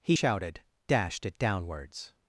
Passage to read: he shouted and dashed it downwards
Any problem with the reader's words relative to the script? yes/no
yes